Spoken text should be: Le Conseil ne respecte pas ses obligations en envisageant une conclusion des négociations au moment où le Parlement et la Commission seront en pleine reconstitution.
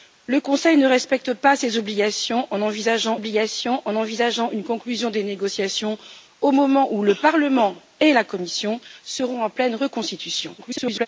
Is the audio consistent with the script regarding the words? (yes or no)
no